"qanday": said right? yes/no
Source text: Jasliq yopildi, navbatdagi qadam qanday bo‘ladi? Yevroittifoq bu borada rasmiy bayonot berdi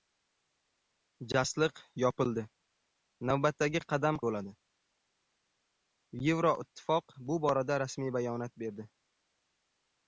no